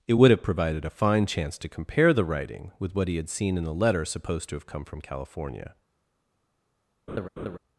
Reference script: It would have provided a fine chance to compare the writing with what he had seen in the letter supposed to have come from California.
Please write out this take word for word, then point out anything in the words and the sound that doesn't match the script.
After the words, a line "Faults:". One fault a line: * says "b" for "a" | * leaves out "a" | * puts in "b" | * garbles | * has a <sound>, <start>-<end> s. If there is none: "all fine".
It would have provided a fine chance to compare the writing with what he had seen in the letter supposed to have come from California.
Faults:
* has a laugh, 7.1-7.6 s